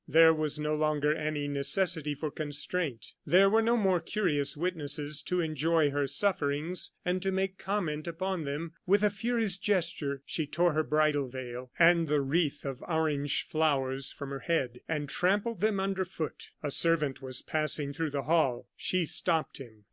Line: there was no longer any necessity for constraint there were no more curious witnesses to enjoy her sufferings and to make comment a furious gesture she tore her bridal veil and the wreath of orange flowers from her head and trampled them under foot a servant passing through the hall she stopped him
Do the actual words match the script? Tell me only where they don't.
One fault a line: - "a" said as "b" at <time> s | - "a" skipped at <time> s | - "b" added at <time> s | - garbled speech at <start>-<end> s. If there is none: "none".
- "upon them with" added at 8.1 s
- "was" added at 17.2 s